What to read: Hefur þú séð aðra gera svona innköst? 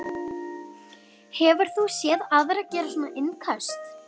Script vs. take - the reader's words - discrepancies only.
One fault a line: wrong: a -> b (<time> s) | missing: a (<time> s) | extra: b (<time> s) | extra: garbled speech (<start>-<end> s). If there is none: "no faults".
no faults